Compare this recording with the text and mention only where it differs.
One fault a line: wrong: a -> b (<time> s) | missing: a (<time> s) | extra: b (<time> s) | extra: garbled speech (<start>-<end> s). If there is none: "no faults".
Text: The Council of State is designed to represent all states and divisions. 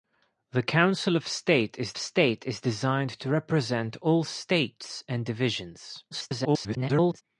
extra: State is (2.0 s)
extra: garbled speech (6.1-7.2 s)